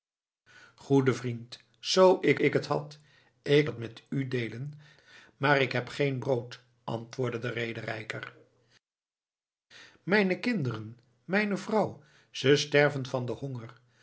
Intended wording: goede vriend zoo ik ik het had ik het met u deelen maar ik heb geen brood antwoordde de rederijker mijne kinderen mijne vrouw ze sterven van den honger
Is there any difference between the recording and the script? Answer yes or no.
no